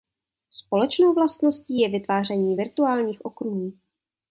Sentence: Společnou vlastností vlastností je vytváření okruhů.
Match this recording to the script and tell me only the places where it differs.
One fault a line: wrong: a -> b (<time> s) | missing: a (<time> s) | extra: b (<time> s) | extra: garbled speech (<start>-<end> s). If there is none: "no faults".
missing: vlastností (1.8 s)
extra: virtuálních (2.5 s)